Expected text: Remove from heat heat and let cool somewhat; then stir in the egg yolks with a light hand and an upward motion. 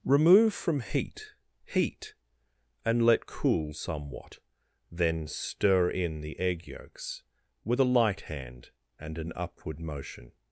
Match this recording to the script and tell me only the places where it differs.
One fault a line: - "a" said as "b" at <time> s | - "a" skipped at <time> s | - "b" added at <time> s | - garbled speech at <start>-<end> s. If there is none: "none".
none